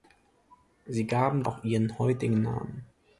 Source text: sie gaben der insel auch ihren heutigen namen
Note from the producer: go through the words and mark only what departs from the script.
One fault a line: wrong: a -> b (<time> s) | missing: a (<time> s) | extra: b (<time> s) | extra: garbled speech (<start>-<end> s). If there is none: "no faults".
missing: der insel (1.4 s)